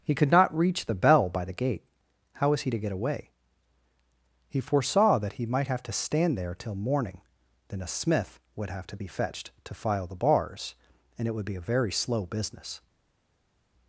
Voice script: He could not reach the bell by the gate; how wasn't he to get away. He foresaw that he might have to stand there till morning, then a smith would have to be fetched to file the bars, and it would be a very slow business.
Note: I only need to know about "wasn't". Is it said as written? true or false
false